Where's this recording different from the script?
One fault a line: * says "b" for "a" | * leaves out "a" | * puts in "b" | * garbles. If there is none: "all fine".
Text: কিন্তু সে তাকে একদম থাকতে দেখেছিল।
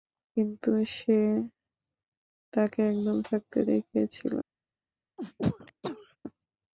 all fine